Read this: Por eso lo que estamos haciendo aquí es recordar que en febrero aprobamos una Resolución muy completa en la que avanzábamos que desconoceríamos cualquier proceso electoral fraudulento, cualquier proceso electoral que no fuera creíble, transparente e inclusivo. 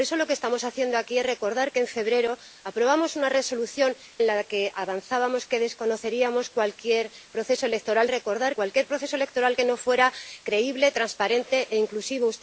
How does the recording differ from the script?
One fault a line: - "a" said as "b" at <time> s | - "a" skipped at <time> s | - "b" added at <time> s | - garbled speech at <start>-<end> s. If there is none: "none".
- "muy completa" skipped at 4.0 s
- "fraudulento" said as "recordar" at 8.1 s